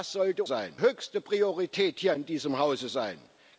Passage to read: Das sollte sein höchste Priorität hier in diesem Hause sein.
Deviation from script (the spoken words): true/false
false